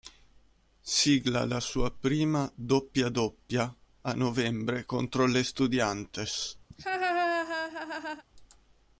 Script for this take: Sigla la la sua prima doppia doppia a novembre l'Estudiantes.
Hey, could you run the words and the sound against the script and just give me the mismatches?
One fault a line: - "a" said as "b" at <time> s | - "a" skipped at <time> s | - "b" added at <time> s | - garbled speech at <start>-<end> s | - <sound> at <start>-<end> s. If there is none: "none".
- "la" skipped at 1.6 s
- "contro" added at 4.9 s
- laugh at 6.7-8.2 s